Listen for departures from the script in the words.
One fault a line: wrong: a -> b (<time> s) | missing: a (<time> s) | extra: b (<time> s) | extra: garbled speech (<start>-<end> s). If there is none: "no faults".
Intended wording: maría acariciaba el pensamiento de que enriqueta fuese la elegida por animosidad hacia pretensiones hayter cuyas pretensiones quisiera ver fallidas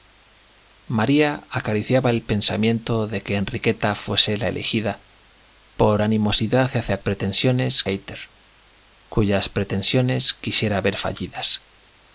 no faults